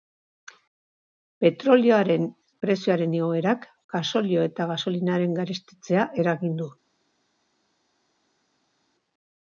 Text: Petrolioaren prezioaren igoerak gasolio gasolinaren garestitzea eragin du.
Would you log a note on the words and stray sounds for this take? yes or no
yes